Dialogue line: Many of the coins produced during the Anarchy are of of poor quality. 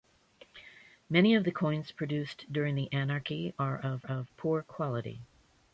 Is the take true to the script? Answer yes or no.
yes